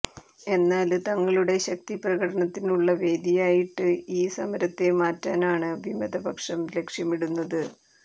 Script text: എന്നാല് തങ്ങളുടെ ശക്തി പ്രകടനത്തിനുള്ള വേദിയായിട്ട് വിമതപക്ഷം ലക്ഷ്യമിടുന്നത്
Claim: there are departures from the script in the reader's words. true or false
true